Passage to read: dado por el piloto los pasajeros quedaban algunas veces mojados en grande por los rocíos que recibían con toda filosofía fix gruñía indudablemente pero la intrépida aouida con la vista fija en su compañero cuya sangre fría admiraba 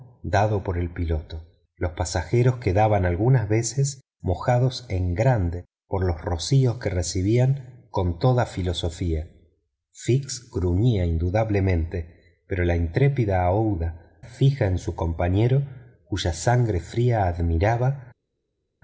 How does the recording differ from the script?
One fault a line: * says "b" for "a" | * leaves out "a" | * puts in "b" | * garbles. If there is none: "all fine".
* leaves out "con la vista"